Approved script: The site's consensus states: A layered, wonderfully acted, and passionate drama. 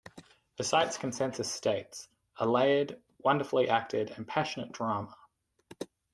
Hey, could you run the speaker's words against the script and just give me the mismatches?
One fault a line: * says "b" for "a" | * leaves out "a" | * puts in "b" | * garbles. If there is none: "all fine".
all fine